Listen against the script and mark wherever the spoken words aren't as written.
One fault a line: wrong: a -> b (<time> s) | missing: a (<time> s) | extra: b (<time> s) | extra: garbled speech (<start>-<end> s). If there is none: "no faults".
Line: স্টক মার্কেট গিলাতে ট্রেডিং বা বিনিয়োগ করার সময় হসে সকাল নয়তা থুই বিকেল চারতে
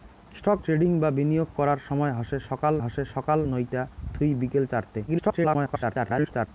missing: মার্কেট গিলাতে (0.6 s)
extra: হসে সকাল (2.8 s)
extra: garbled speech (5.1-6.5 s)